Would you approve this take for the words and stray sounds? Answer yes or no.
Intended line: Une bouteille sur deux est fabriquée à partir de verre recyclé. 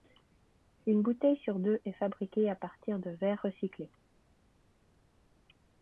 yes